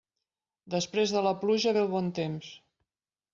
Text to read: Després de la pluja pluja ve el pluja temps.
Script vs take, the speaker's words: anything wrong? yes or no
yes